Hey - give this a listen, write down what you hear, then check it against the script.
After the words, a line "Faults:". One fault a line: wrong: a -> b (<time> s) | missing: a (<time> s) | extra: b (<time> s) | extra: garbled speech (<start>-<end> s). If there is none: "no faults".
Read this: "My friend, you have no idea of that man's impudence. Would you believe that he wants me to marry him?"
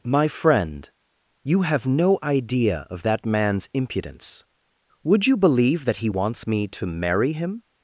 "My friend, you have no idea of that man's impudence. Would you believe that he wants me to marry him?"
Faults:
no faults